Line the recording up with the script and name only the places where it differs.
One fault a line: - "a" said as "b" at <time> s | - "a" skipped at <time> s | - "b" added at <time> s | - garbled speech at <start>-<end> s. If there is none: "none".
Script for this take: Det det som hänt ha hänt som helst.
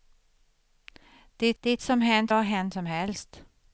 none